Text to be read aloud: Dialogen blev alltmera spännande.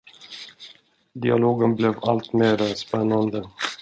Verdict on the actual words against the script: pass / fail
pass